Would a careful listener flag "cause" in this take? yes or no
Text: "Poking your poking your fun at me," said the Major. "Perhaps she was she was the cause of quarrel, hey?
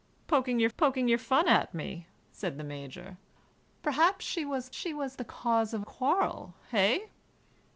no